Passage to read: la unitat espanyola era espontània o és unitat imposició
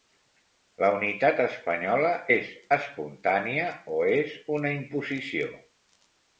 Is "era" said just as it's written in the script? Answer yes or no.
no